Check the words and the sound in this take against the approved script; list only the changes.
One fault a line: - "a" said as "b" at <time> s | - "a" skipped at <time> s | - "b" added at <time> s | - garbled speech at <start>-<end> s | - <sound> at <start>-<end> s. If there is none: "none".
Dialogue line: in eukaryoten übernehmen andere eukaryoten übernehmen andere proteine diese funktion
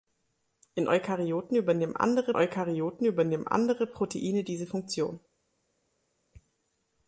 none